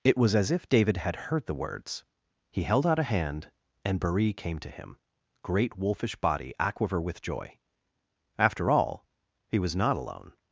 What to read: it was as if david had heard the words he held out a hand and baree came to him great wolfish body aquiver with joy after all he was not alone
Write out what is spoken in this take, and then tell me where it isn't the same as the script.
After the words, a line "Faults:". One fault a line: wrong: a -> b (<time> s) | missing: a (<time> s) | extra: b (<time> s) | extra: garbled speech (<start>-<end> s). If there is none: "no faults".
it was as if david had heard the words he held out a hand and baree came to him great wolfish body aquiver with joy after all he was not alone
Faults:
no faults